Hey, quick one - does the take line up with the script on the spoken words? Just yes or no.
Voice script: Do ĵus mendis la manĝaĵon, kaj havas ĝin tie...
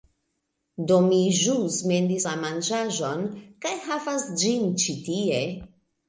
no